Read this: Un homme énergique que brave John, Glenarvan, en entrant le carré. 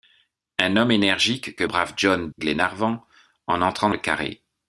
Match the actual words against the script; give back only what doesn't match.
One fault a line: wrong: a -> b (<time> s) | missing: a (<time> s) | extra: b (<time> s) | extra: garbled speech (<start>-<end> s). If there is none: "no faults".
no faults